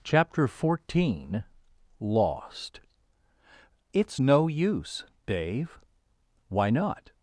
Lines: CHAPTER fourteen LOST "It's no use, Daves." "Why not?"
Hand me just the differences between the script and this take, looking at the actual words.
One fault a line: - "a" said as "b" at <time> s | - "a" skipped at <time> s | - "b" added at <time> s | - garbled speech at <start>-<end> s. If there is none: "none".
- "Daves" said as "Dave" at 5.3 s